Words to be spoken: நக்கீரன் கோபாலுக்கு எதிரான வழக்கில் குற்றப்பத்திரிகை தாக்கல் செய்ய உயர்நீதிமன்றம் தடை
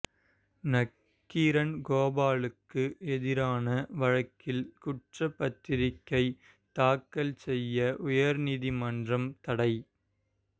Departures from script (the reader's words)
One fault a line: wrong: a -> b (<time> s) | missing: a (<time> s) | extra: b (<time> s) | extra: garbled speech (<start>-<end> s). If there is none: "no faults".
no faults